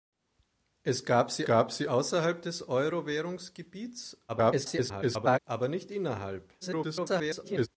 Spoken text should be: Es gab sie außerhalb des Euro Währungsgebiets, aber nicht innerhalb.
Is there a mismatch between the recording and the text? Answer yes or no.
yes